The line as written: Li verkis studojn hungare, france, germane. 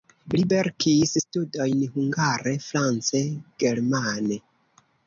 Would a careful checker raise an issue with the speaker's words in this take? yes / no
no